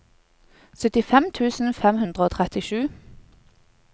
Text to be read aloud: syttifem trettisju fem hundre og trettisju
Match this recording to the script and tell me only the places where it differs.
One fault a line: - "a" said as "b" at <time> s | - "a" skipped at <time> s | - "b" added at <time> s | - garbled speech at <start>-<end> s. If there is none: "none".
- "trettisju" said as "tusen" at 1.4 s